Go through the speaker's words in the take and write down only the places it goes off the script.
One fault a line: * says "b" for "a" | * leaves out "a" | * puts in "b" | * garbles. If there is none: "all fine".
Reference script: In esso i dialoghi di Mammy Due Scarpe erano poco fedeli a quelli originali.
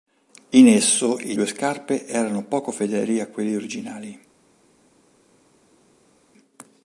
* leaves out "dialoghi di Mammy"